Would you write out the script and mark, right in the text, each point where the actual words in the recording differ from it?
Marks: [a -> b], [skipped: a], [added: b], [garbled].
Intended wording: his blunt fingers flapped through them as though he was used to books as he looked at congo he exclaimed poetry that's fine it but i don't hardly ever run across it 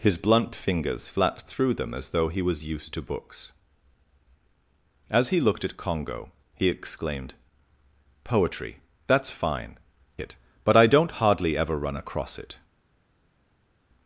his blunt fingers flapped through them as though he was used to books as he looked at congo he exclaimed poetry that's fine it but i don't hardly ever run across it